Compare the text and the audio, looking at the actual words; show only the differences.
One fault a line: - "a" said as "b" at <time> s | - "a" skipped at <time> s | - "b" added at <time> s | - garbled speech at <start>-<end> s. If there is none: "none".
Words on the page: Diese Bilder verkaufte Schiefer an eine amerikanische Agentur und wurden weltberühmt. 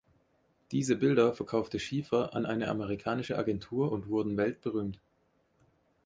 none